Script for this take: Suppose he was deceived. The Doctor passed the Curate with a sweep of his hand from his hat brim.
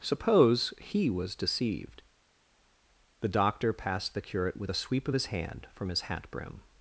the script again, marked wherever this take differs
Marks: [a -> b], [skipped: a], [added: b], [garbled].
Suppose he was deceived. The Doctor passed the Curate with a sweep of his hand from his hat brim.